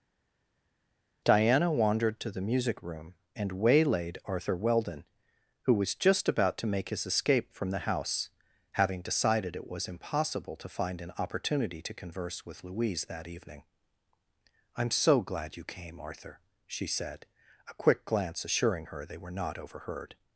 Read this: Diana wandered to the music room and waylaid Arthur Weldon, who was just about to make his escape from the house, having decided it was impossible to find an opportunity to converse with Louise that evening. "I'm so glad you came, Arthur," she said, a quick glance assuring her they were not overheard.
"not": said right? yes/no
yes